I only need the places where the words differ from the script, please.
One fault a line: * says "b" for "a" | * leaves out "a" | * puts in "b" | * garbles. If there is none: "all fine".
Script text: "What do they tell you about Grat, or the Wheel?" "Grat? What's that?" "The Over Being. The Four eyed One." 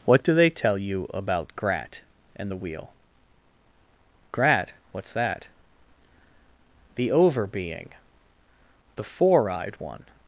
* says "and" for "or"